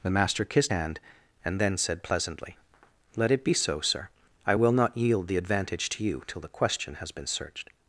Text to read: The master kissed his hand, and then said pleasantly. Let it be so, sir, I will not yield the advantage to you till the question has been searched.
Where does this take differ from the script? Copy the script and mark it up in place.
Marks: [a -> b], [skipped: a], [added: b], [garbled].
The master kissed [skipped: his] hand, and then said pleasantly. Let it be so, sir, I will not yield the advantage to you till the question has been searched.